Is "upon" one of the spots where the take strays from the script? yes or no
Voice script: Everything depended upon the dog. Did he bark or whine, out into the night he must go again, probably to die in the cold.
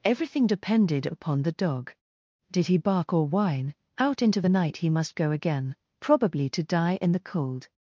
no